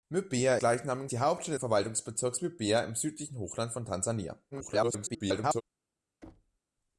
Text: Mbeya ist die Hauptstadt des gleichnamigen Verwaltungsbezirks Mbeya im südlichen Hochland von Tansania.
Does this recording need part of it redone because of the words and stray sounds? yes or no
yes